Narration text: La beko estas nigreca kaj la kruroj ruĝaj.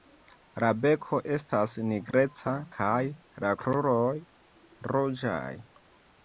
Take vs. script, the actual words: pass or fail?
pass